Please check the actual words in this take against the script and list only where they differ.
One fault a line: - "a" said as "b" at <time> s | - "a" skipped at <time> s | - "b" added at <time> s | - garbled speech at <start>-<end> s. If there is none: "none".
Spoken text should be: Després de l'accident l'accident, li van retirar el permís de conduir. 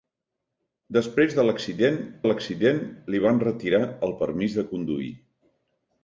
none